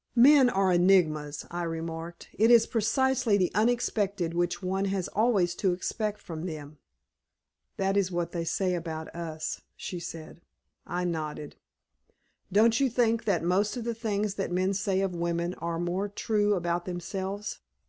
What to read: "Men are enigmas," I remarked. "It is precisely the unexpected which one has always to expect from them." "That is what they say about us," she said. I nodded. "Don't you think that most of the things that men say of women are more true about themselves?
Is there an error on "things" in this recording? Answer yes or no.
no